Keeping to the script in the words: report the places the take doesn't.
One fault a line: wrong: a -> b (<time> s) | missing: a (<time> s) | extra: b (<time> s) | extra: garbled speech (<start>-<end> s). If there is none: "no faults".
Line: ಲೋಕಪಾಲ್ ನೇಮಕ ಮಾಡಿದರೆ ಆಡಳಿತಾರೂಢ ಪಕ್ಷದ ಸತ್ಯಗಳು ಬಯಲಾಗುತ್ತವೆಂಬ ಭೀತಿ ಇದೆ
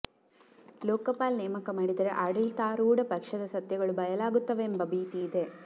no faults